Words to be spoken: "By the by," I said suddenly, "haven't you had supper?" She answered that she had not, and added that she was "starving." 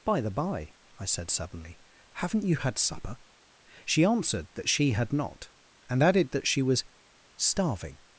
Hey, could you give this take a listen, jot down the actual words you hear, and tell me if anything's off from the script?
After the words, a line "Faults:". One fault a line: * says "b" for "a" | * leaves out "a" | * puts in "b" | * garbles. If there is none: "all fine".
"By the by," I said suddenly, "haven't you had supper?" She answered that she had not, and added that she was "starving."
Faults:
all fine